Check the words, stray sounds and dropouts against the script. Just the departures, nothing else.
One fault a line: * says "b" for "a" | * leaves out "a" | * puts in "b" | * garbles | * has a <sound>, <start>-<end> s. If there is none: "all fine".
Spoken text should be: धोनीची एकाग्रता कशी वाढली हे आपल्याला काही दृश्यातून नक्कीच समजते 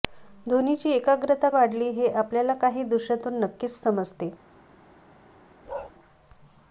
* leaves out "कशी"
* has a bark, 5.7-5.9 s